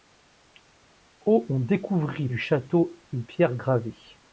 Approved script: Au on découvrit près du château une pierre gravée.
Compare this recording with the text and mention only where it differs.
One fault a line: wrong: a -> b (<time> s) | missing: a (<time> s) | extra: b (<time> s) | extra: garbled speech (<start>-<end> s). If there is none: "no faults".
missing: près (2.3 s)